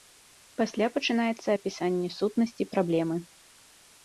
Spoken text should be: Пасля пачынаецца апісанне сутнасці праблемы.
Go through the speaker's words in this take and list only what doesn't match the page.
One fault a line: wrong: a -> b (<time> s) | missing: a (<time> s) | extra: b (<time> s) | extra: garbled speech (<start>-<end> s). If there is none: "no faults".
no faults